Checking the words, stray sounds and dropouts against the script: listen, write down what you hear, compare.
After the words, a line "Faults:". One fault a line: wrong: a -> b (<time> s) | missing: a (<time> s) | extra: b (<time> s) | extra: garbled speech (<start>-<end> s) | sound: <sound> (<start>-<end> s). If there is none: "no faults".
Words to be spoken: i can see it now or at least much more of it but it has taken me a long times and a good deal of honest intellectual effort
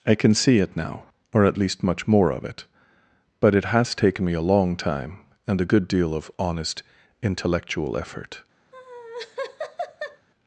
i can see it now or at least much more of it but it has taken me a long time and a good deal of honest intellectual effort
Faults:
wrong: times -> time (4.8 s)
sound: laugh (8.7-10.3 s)